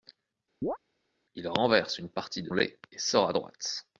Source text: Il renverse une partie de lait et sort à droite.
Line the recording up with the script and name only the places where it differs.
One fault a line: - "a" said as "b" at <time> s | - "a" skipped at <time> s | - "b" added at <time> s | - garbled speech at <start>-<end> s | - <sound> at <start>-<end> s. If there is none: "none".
- chirp at 0.6-0.8 s